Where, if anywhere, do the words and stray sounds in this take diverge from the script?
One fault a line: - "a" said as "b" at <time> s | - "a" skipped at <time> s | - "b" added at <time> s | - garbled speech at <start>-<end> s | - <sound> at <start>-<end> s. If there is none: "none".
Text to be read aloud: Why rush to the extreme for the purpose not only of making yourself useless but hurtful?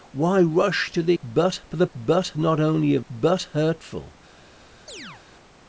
- "extreme" said as "but" at 1.2 s
- "purpose" said as "but" at 1.9 s
- "making yourself useless" skipped at 3.0 s
- chirp at 4.9-5.2 s